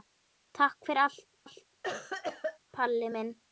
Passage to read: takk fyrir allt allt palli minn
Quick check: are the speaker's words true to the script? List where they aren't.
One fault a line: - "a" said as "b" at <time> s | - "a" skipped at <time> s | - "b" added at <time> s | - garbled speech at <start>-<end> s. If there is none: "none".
none